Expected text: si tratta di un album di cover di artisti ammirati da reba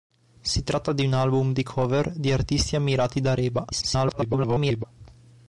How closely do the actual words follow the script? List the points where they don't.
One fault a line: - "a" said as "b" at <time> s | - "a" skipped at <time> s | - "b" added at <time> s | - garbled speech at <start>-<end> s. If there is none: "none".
- garbled speech at 3.7-4.8 s